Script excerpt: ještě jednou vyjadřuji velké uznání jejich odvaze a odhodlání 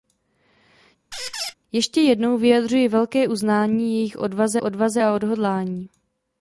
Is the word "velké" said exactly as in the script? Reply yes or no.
yes